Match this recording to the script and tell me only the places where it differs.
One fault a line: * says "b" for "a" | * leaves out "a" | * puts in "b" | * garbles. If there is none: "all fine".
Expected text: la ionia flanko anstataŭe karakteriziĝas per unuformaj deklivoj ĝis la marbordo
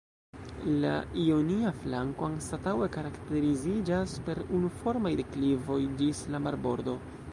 all fine